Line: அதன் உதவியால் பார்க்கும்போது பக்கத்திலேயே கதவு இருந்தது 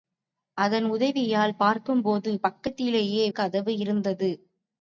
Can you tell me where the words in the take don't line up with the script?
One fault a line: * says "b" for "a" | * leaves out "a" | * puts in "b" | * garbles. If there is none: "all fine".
all fine